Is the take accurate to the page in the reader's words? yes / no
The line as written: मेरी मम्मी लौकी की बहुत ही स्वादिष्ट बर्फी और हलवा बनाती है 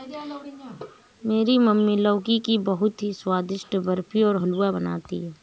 yes